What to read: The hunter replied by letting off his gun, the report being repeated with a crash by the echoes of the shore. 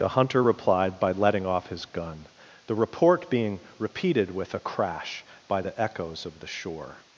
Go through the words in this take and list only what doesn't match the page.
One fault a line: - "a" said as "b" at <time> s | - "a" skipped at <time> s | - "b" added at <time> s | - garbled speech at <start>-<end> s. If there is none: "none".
none